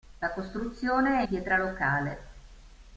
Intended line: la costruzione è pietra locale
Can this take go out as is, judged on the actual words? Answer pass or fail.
pass